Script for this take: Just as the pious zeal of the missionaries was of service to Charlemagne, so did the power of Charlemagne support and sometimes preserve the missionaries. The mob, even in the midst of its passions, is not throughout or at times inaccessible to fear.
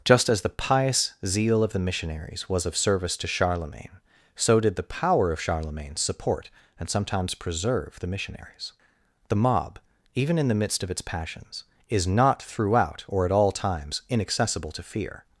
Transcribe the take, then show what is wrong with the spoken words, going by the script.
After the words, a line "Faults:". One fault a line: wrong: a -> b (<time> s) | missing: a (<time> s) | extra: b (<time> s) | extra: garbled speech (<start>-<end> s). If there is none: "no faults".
Just as the pious zeal of the missionaries was of service to Charlemagne, so did the power of Charlemagne support and sometimes preserve the missionaries. The mob, even in the midst of its passions, is not throughout or at all times inaccessible to fear.
Faults:
extra: all (13.3 s)